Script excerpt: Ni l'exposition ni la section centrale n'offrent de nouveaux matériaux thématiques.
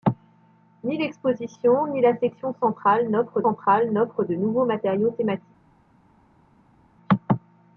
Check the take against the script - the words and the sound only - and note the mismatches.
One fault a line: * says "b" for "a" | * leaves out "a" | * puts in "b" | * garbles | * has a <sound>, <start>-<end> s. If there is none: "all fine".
* puts in "centrale n'offrent"